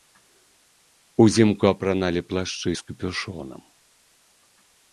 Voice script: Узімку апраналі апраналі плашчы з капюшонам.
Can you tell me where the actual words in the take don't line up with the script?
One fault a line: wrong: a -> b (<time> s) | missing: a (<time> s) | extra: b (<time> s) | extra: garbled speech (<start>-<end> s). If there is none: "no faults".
missing: апраналі (2.2 s)